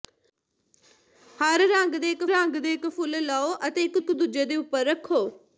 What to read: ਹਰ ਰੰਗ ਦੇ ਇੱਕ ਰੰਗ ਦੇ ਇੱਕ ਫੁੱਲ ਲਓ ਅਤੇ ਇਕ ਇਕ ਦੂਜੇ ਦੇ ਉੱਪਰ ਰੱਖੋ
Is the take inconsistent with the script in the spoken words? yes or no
no